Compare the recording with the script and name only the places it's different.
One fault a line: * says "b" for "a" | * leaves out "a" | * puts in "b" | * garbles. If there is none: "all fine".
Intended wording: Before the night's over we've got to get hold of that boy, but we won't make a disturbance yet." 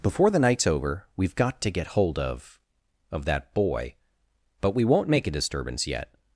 * puts in "of"